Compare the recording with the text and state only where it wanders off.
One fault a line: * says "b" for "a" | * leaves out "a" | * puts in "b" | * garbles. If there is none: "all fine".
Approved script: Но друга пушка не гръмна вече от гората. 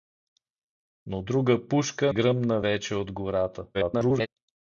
* leaves out "не"
* garbles